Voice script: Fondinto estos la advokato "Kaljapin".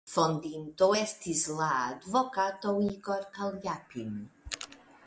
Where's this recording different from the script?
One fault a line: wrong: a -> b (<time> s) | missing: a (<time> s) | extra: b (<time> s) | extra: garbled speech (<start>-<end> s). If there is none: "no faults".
wrong: estos -> estis (1.0 s)
extra: Igor (2.9 s)